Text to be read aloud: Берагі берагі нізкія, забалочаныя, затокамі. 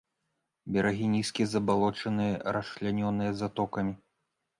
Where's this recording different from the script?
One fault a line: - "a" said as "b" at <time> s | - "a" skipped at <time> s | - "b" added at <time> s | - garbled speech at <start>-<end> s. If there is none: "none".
- "берагі" skipped at 1.1 s
- "расчлянёныя" added at 2.6 s